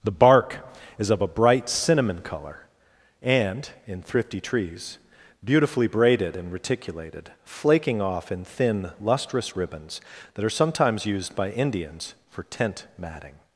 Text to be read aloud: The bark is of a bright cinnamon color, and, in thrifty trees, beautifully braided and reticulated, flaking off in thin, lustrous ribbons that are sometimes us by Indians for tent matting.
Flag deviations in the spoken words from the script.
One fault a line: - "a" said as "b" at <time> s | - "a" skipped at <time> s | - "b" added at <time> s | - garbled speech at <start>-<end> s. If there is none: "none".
- "us" said as "used" at 11.1 s